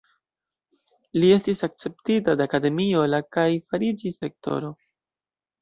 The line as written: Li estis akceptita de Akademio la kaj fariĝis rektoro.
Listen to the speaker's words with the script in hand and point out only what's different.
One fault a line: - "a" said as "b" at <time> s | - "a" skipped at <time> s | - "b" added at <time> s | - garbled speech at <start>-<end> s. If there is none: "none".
none